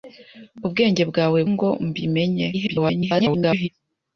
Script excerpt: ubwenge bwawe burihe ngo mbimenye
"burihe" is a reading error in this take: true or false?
true